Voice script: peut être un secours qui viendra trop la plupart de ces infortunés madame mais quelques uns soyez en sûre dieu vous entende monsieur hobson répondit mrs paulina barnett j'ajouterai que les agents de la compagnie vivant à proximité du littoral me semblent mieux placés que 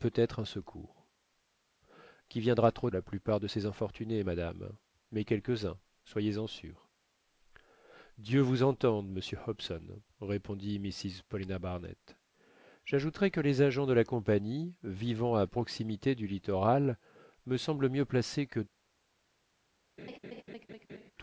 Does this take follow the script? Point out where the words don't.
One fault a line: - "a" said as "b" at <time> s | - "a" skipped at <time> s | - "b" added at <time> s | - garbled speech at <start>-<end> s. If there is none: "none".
none